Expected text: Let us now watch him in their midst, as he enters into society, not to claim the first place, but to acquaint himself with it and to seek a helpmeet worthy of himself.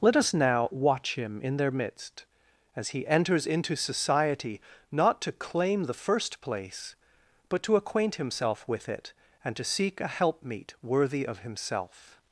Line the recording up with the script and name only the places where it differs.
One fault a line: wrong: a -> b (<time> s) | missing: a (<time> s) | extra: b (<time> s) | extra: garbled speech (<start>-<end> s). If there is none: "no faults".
no faults